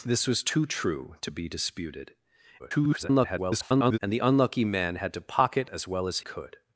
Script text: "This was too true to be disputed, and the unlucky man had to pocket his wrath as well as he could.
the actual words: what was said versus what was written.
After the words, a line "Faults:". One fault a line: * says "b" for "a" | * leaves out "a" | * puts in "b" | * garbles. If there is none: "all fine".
"This was too true to be disputed, [garbled] and the unlucky man had to pocket as well as could.
Faults:
* garbles
* leaves out "his wrath"
* leaves out "he"